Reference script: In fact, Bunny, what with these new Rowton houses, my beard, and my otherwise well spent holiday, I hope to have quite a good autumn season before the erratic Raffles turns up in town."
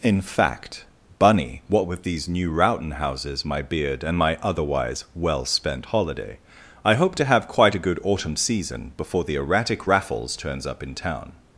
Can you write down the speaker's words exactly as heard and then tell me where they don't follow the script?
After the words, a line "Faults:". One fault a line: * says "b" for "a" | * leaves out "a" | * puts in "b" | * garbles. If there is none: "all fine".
In fact, Bunny, what with these new Rowton houses, my beard, and my otherwise well spent holiday, I hope to have quite a good autumn season before the erratic Raffles turns up in town."
Faults:
all fine